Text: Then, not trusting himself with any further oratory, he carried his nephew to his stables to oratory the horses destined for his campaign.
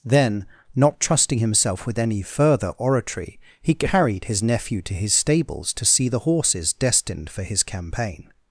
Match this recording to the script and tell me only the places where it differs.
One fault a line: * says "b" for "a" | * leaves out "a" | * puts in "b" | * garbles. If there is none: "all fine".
* says "see" for "oratory"